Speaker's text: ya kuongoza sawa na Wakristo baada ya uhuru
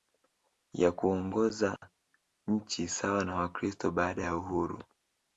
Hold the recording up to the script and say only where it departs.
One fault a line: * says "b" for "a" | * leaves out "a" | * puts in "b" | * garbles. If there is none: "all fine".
* puts in "nchi"